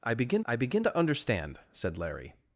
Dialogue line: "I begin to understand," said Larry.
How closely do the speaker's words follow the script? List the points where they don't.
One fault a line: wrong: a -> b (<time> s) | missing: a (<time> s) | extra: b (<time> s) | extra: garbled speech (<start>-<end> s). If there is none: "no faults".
extra: I begin (0.5 s)